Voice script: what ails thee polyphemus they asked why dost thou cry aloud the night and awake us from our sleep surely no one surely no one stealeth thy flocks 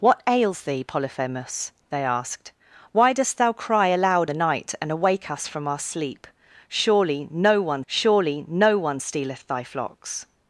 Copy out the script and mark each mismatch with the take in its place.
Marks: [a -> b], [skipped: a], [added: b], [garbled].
what ails thee polyphemus they asked why dost thou cry aloud the night and awake us from our sleep surely no one surely no one stealeth thy flocks